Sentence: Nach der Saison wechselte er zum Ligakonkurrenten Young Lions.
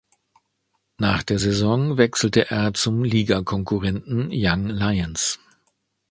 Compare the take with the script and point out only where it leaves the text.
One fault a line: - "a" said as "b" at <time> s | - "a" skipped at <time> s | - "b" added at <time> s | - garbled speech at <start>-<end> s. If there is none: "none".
none